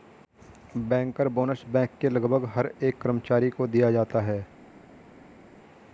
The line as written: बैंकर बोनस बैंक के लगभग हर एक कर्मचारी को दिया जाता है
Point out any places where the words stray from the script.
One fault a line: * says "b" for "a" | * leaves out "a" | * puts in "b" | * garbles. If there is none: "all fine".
all fine